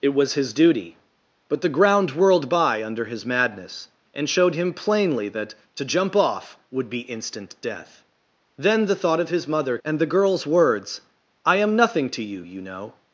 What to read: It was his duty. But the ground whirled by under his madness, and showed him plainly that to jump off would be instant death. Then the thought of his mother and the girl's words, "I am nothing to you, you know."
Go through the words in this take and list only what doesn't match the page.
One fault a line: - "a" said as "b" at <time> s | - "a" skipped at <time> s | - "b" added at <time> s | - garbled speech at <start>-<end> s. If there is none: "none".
none